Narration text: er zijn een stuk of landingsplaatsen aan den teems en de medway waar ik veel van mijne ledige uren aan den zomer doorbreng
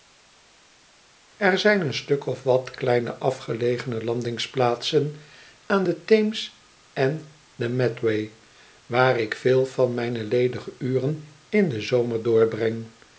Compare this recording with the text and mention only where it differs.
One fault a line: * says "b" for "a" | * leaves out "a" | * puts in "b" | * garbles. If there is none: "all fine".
* puts in "wat kleine afgelegene"
* says "in" for "aan"